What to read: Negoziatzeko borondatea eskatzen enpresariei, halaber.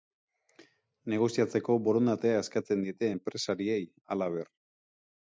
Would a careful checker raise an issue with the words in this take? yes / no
yes